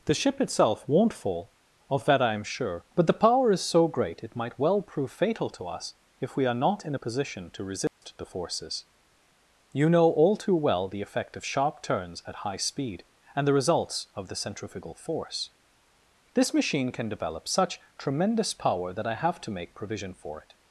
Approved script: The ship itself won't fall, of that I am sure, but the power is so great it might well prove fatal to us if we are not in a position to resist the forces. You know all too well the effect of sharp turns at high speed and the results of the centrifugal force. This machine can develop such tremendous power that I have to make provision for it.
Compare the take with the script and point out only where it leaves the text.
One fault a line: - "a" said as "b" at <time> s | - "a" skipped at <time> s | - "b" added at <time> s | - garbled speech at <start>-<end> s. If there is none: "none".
none